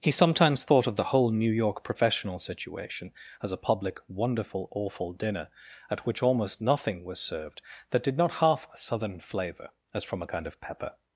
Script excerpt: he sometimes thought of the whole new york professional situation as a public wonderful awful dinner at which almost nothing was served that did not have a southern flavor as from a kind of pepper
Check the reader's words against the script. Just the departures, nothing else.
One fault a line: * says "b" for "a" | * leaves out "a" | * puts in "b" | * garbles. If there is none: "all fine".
* says "half" for "have"